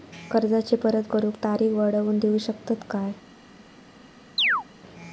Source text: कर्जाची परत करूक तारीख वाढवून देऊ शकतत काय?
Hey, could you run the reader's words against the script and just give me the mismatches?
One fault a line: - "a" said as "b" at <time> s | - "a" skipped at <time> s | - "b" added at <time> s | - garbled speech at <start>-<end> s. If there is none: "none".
none